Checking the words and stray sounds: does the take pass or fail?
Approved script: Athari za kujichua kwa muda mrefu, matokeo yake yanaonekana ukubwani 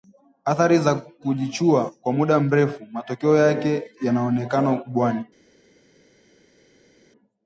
pass